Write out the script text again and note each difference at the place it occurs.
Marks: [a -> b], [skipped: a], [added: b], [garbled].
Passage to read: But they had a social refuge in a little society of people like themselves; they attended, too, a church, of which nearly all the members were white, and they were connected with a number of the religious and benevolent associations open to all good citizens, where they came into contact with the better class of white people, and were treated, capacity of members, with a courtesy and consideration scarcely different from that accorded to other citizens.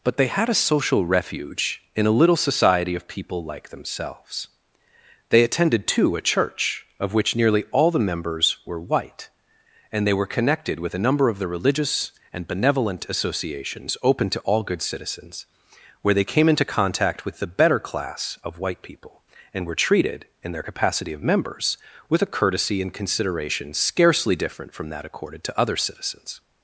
But they had a social refuge in a little society of people like themselves; they attended, too, a church, of which nearly all the members were white, and they were connected with a number of the religious and benevolent associations open to all good citizens, where they came into contact with the better class of white people, and were treated, [added: in their] capacity of members, with a courtesy and consideration scarcely different from that accorded to other citizens.